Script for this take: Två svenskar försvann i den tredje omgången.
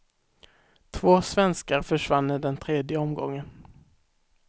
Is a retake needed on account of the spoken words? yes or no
no